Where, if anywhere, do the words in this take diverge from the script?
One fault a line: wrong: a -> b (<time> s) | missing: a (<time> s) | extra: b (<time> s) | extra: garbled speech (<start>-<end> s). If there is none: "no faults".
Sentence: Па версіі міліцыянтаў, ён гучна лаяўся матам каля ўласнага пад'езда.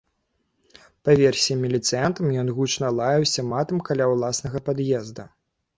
no faults